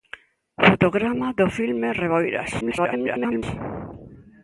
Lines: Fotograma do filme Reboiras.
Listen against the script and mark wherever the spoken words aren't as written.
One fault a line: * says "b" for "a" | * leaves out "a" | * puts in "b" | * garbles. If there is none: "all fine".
* garbles